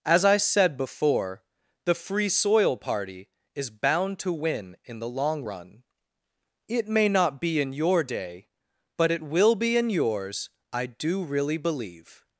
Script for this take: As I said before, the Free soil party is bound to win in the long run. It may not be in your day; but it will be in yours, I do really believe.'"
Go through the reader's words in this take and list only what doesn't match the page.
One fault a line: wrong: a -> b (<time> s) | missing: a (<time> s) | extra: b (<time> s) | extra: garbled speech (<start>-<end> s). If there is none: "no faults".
no faults